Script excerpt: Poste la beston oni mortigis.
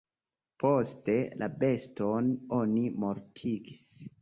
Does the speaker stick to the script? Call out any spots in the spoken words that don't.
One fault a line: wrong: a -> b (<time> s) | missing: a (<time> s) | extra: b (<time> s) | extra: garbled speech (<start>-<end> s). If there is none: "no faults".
no faults